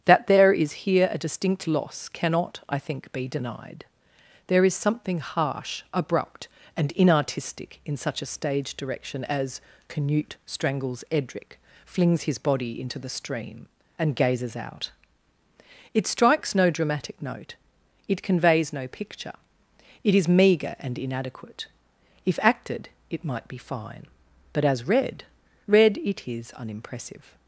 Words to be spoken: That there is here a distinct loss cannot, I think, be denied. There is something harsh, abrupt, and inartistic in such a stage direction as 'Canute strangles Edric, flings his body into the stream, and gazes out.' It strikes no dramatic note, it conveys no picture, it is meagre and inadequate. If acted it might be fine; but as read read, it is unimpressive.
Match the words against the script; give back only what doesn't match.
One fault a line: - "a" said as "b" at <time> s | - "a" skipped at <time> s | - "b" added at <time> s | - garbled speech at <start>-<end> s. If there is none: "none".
none